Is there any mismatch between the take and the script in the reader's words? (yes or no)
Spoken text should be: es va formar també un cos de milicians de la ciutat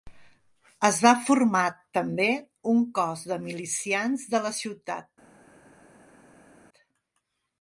no